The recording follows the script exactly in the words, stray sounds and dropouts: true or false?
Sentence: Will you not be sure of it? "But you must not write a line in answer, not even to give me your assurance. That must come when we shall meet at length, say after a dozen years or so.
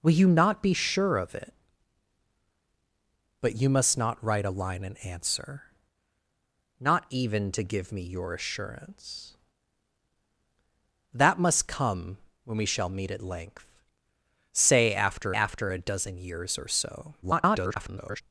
false